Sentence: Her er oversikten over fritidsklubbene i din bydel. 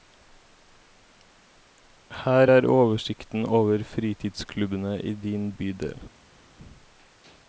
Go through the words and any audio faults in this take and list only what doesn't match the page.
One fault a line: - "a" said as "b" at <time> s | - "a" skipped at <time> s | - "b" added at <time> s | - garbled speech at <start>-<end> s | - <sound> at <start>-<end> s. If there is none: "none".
none